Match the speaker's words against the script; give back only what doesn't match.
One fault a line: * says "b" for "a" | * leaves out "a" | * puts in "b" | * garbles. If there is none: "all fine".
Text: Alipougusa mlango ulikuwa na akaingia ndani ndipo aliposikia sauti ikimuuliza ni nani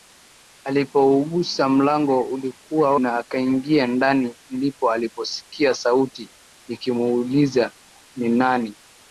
all fine